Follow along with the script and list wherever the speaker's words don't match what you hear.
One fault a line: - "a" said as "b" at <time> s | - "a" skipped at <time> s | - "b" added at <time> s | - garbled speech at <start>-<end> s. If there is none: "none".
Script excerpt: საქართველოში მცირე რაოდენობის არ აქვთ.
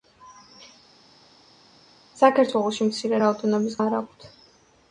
none